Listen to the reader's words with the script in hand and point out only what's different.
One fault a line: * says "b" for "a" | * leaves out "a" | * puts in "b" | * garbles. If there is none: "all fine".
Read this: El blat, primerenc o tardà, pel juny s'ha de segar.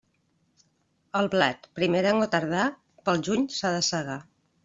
all fine